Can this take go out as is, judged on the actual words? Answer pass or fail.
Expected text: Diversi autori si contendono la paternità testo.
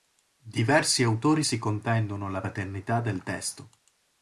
fail